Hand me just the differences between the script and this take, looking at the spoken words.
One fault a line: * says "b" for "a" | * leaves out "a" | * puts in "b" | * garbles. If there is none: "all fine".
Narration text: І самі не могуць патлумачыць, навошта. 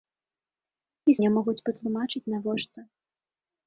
* leaves out "самі"